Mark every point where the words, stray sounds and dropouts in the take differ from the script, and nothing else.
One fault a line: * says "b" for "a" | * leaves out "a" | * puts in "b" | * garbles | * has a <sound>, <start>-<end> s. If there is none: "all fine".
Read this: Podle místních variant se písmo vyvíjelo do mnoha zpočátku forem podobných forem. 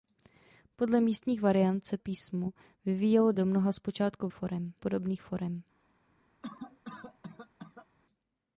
* has a cough, 6.4-7.9 s